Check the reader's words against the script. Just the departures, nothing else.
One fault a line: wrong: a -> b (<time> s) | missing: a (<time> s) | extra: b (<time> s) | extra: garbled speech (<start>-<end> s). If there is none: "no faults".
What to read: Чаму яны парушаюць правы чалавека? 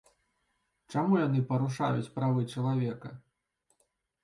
no faults